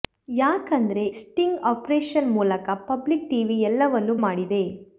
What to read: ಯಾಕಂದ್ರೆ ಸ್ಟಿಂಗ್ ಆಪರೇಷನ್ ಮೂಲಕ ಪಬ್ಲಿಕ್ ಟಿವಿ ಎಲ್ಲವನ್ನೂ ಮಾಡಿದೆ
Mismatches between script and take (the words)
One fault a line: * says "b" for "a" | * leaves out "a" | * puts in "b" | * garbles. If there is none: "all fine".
all fine